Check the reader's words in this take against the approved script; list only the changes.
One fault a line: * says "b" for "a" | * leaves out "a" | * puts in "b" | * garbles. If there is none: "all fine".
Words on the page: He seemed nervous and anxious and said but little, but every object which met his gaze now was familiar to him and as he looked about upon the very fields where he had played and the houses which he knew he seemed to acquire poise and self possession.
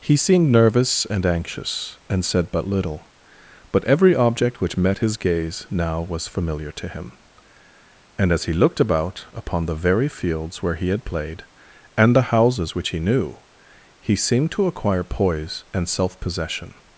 all fine